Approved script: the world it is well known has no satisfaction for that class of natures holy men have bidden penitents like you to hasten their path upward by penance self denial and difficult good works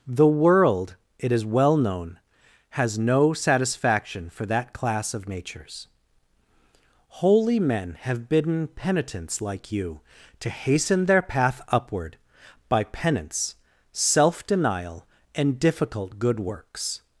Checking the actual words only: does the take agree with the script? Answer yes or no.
yes